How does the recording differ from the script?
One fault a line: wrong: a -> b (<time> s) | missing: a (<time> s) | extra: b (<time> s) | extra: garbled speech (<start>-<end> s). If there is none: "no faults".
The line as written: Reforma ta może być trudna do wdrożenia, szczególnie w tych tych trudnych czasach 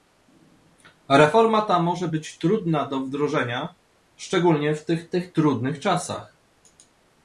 no faults